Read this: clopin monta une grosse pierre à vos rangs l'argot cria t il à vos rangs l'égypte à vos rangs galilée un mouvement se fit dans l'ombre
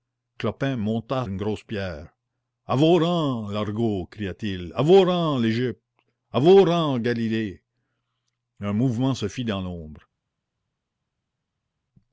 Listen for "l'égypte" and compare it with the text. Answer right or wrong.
right